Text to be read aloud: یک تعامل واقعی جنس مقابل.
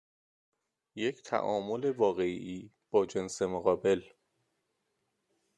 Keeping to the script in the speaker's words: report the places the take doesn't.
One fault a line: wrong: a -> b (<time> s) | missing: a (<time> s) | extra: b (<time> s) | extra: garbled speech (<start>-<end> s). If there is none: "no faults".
extra: با (2.9 s)